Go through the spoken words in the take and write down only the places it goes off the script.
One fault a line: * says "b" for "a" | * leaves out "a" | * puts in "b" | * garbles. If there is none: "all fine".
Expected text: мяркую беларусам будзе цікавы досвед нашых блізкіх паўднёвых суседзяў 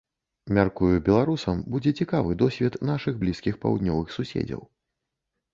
all fine